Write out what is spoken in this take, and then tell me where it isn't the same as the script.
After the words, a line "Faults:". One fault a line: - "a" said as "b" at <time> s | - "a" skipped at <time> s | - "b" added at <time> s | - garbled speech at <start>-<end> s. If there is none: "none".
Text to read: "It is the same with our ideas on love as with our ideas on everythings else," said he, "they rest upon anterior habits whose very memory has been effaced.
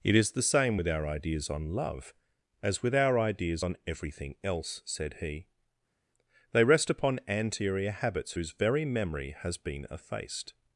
"It is the same with our ideas on love as with our ideas on everything else," said he, "they rest upon anterior habits whose very memory has been effaced.
Faults:
- "everythings" said as "everything" at 3.9 s